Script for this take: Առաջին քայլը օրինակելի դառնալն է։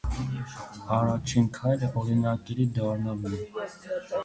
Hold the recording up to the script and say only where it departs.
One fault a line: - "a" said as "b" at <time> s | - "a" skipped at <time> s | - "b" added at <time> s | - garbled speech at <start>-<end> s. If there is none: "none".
none